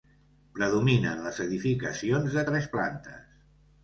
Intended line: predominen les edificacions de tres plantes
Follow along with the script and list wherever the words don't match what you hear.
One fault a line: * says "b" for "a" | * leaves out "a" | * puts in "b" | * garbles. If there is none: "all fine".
all fine